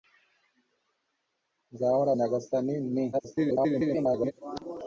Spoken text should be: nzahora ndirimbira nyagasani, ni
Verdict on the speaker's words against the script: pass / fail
fail